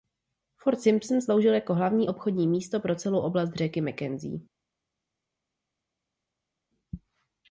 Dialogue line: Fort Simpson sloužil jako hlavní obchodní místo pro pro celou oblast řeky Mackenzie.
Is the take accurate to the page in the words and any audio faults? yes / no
no